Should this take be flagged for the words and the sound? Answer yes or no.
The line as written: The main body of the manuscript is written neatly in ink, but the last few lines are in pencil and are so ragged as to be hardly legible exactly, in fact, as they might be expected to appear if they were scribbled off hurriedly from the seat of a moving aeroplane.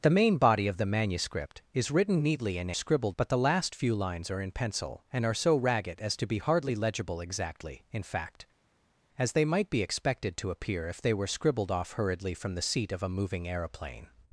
yes